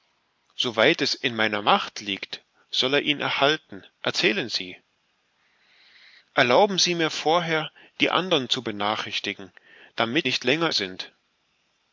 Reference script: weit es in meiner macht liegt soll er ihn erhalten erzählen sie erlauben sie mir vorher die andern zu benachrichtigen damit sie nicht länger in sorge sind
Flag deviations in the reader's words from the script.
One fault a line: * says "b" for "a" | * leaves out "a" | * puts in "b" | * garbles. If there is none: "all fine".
* leaves out "sie"
* leaves out "in sorge"